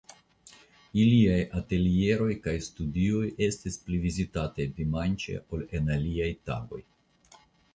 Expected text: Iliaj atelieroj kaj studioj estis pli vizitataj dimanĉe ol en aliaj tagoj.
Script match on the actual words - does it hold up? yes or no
yes